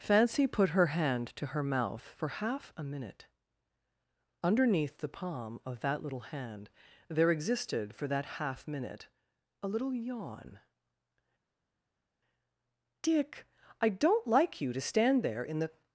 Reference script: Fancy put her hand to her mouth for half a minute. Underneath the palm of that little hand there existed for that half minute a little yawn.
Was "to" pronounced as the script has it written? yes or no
yes